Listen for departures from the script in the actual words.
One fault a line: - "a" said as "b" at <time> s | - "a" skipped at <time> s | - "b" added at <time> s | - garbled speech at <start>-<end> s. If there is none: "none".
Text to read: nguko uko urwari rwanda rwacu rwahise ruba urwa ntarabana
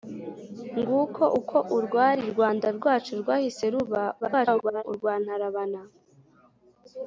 - garbled speech at 4.2-4.8 s